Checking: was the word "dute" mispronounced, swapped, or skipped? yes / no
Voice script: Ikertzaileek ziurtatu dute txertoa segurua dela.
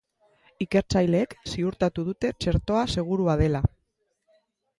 no